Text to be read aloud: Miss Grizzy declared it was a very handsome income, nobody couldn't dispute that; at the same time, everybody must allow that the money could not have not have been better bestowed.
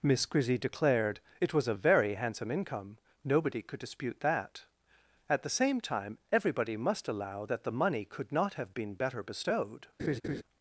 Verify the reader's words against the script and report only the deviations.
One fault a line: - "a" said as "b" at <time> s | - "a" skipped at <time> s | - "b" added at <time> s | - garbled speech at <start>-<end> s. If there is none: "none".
- "couldn't" said as "could" at 3.6 s
- "not have" skipped at 8.7 s